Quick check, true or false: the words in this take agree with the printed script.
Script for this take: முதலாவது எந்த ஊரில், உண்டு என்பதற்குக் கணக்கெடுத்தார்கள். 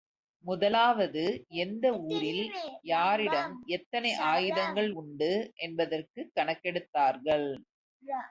false